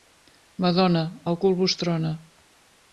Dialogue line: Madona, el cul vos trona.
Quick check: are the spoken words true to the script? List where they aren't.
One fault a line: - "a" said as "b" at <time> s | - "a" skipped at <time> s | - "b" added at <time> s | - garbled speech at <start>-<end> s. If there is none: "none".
none